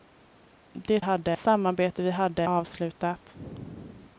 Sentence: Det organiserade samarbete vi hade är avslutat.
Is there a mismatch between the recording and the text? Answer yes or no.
yes